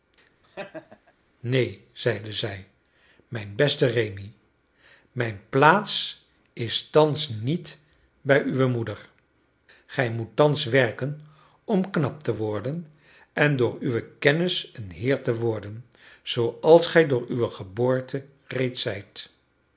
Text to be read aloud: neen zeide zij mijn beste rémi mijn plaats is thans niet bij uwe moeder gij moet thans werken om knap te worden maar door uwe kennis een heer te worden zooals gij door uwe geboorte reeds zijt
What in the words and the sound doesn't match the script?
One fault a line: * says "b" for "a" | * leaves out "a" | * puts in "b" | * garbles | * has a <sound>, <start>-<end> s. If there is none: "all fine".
* has a laugh, 0.4-1.1 s
* says "en" for "maar"